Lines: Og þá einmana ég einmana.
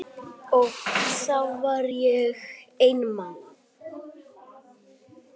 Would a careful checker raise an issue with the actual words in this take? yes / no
yes